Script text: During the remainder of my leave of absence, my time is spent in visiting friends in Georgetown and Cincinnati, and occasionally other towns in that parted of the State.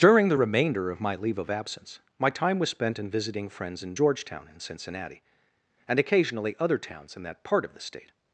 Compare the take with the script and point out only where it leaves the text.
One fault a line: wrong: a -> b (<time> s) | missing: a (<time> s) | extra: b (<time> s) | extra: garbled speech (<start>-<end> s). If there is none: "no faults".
wrong: is -> was (2.6 s)
wrong: parted -> part (7.4 s)